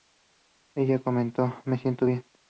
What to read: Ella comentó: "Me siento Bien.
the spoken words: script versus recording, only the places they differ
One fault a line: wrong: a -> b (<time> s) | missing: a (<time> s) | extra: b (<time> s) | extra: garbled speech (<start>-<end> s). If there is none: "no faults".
no faults